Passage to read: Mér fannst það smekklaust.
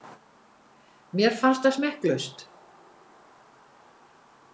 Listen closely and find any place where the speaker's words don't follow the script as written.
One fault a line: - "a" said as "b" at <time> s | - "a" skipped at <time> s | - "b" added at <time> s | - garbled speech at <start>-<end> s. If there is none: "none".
none